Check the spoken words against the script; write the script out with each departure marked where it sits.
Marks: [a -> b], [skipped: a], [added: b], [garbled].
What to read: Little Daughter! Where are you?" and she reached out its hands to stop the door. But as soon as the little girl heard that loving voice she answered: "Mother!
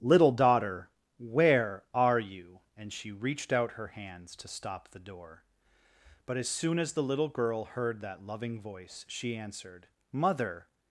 Little Daughter! Where are you?" and she reached out [its -> her] hands to stop the door. But as soon as the little girl heard that loving voice she answered: "Mother!